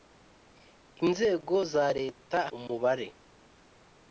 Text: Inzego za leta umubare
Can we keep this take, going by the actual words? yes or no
yes